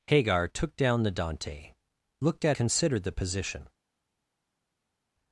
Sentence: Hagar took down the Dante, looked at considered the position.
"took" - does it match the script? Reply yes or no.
yes